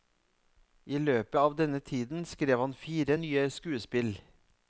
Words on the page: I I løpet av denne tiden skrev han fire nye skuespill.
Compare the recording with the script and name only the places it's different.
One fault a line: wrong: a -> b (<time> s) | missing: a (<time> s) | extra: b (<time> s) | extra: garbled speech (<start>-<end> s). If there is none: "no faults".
missing: I (1.0 s)